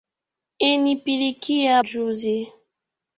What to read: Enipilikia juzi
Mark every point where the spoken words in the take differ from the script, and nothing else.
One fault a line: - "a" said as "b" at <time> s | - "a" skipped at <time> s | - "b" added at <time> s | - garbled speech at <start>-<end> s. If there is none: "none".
none